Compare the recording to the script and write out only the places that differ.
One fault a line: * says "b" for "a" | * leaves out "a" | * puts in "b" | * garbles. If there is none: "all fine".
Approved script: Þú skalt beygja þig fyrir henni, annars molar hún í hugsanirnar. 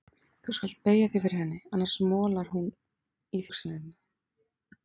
all fine